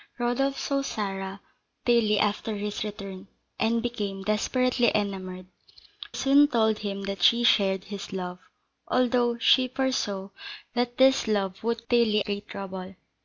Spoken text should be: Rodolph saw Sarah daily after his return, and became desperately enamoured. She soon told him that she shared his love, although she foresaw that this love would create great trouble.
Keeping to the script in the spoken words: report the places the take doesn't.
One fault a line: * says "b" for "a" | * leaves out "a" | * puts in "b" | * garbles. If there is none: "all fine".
* leaves out "She"
* says "daily" for "create"